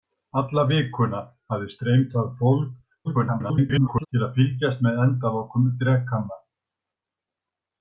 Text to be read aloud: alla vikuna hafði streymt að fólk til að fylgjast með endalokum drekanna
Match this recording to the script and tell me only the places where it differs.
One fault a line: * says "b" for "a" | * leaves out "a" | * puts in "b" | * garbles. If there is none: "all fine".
* garbles